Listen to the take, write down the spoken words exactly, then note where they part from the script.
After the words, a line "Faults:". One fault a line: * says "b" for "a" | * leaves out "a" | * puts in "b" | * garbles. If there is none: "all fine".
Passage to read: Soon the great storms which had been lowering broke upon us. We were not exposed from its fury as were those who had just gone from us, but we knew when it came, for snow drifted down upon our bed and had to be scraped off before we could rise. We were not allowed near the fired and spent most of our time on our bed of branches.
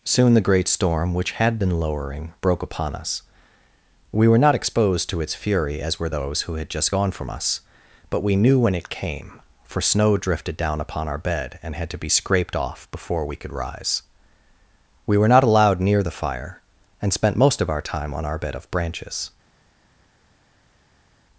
Soon the great storm which had been lowering broke upon us. We were not exposed to its fury as were those who had just gone from us, but we knew when it came, for snow drifted down upon our bed and had to be scraped off before we could rise. We were not allowed near the fire and spent most of our time on our bed of branches.
Faults:
* says "storm" for "storms"
* says "to" for "from"
* says "fire" for "fired"